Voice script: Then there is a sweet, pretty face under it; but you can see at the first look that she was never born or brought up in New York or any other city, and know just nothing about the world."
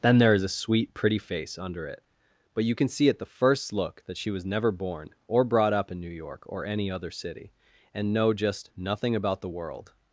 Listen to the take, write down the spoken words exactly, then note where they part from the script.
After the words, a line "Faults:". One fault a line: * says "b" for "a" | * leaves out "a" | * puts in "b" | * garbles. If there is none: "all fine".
Then there is a sweet, pretty face under it; but you can see at the first look that she was never born or brought up in New York or any other city, and know just nothing about the world."
Faults:
all fine